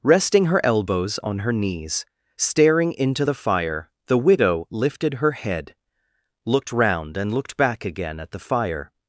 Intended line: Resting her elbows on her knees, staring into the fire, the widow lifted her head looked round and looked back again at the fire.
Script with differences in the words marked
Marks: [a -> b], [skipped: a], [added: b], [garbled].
Resting her elbows on her knees, staring into the fire, the widow lifted her head looked round and looked back again at the fire.